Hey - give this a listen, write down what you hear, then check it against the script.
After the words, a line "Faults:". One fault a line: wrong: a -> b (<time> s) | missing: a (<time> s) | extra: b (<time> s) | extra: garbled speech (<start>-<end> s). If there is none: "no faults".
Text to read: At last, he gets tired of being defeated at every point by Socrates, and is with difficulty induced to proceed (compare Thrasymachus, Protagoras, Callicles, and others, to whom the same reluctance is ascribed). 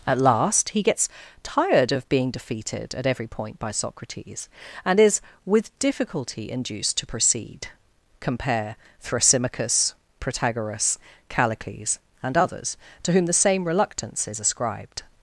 At last, he gets tired of being defeated at every point by Socrates, and is with difficulty induced to proceed (compare Thrasymachus, Protagoras, Callicles, and others, to whom the same reluctance is ascribed).
Faults:
no faults